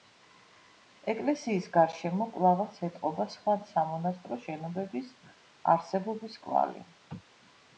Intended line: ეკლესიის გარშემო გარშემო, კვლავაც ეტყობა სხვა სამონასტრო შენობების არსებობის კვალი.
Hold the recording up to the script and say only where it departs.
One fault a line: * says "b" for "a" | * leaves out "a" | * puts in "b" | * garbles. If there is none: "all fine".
* leaves out "გარშემო"